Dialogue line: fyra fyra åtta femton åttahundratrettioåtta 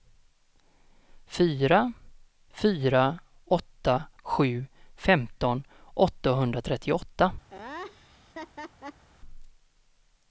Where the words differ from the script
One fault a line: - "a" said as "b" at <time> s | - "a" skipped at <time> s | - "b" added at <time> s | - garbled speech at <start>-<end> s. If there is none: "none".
- "sju" added at 4.2 s